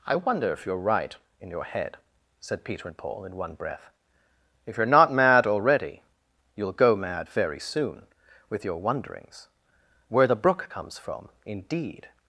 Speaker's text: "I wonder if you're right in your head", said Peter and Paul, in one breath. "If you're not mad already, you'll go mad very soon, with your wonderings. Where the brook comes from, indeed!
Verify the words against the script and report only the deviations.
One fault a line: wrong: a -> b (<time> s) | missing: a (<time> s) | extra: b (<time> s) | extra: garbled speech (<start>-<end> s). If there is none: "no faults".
no faults